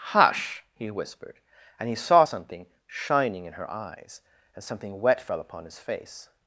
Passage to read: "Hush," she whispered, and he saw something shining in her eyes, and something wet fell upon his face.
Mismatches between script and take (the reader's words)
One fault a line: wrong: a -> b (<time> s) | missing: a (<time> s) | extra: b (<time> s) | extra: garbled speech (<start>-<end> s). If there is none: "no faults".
wrong: she -> he (0.7 s)